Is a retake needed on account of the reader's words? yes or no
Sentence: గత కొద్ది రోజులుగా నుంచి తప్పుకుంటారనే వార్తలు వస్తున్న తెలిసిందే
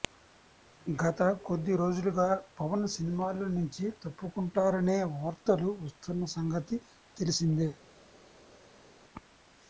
yes